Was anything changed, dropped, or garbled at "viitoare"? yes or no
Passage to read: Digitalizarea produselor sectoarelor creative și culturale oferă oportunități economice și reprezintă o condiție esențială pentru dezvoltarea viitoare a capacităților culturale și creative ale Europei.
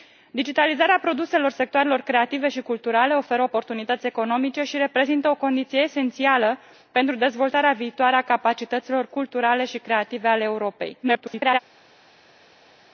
no